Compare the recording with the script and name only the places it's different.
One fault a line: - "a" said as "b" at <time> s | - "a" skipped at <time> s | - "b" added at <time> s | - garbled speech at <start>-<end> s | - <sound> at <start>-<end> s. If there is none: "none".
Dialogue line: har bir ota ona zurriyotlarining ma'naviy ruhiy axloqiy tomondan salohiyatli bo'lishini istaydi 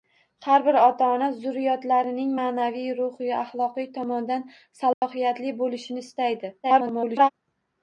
- dropout at 4.9-5.0 s
- garbled speech at 6.6-7.3 s